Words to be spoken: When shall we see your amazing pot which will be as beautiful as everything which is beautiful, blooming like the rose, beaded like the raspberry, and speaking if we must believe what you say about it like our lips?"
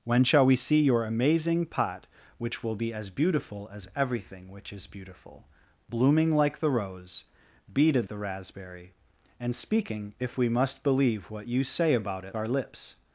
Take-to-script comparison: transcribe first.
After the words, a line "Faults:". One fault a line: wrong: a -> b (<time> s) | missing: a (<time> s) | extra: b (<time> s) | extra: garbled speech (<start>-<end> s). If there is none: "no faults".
When shall we see your amazing pot which will be as beautiful as everything which is beautiful, blooming like the rose, beaded the raspberry, and speaking if we must believe what you say about it our lips?"
Faults:
missing: like (8.1 s)
missing: like (12.4 s)